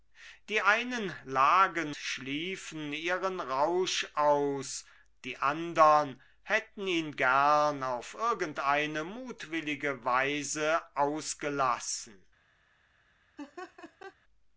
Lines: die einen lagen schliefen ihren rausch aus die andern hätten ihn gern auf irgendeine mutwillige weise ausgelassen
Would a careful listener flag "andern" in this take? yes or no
no